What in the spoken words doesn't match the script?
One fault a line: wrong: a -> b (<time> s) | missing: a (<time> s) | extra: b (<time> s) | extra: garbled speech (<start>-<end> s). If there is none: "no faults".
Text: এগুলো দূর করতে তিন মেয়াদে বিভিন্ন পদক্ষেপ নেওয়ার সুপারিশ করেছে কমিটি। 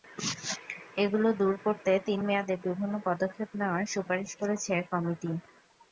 no faults